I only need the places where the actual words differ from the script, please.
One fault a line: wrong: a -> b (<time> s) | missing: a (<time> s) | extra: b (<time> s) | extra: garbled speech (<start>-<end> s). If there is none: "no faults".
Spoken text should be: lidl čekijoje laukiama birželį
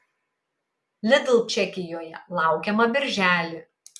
no faults